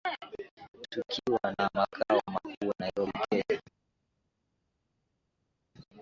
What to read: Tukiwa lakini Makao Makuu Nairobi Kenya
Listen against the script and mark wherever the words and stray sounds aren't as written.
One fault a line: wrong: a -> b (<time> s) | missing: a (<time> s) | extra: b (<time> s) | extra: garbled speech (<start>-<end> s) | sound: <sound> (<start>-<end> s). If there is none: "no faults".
wrong: lakini -> na (1.6 s)